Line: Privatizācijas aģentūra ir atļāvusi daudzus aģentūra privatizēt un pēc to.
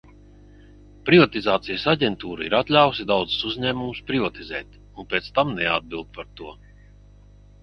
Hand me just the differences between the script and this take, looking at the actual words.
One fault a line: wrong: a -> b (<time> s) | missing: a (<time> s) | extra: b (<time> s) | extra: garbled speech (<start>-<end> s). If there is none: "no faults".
wrong: aģentūra -> uzņēmumus (3.5 s)
extra: tam neatbild par (5.4 s)